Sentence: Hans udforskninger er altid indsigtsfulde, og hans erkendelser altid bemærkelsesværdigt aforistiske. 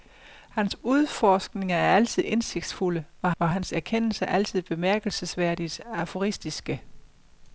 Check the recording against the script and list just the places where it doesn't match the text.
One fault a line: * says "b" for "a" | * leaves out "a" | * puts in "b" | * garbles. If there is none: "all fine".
* puts in "og"